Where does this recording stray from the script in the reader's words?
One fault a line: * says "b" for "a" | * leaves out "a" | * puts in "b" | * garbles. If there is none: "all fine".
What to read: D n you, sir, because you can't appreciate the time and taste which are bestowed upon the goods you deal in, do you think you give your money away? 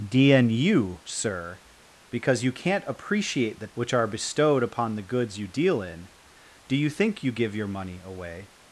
* leaves out "time and taste"